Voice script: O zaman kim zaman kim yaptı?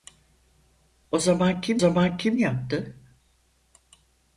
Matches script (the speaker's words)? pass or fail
pass